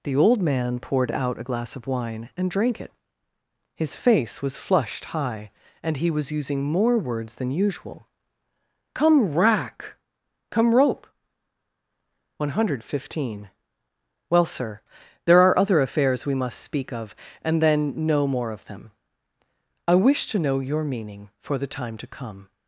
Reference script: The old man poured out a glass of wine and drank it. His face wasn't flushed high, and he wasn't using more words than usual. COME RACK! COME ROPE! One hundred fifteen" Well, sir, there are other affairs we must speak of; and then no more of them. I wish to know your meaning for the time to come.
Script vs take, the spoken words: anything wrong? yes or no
yes